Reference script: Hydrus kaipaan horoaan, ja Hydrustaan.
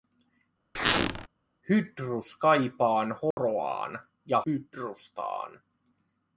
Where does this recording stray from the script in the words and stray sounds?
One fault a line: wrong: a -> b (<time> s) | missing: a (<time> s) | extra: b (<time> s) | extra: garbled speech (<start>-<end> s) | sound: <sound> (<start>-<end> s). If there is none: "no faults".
sound: squeak (0.7-1.3 s)
sound: dropout (3.3-3.4 s)